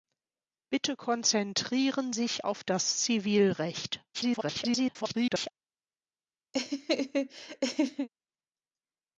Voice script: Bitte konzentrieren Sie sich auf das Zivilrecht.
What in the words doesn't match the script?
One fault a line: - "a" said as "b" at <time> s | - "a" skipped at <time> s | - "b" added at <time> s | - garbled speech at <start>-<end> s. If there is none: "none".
- "Sie" skipped at 2.1 s
- garbled speech at 4.1-5.5 s